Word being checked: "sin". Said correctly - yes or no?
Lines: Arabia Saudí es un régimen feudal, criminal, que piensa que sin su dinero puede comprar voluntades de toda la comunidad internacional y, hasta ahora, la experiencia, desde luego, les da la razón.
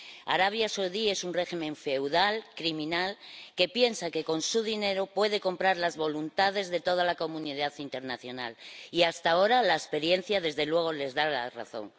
no